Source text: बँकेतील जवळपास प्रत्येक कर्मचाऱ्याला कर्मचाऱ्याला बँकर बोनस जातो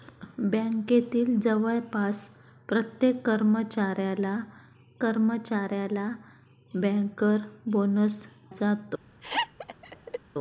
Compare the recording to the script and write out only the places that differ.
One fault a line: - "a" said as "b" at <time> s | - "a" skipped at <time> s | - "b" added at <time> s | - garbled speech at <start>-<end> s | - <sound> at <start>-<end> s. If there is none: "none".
- laugh at 9.2-10.2 s